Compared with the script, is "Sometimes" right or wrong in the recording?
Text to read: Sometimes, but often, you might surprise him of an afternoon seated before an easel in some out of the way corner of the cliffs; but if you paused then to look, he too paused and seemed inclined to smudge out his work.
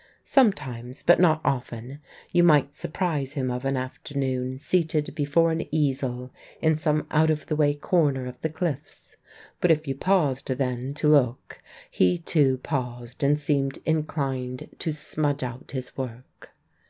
right